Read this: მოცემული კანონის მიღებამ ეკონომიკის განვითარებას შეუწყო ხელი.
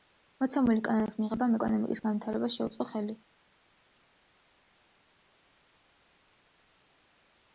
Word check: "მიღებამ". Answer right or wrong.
right